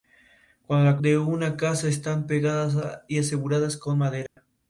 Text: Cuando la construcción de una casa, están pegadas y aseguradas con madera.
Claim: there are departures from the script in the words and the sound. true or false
true